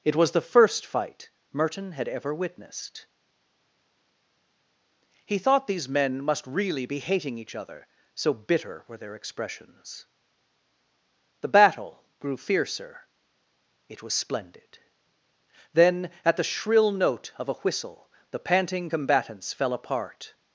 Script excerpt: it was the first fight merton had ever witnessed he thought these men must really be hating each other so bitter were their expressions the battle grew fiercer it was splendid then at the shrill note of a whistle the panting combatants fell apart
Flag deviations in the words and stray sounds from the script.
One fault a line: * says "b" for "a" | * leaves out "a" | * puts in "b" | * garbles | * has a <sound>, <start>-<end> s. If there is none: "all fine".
all fine